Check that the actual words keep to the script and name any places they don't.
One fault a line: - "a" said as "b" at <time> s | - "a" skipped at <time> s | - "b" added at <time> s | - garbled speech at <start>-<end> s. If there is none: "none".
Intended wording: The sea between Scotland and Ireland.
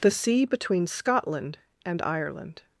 none